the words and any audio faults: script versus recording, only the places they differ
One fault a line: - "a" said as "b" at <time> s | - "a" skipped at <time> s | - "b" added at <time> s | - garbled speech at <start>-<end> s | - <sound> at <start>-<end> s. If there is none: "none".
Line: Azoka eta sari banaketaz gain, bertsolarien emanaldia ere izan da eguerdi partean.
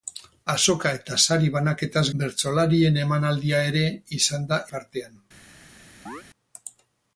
- "gain" skipped at 2.0 s
- "eguerdi" skipped at 4.6 s
- chirp at 6.1-6.2 s